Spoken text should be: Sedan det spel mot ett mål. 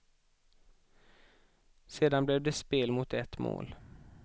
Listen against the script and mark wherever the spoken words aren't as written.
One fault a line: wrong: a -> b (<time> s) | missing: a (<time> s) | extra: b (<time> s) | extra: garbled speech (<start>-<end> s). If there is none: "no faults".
extra: blev (2.2 s)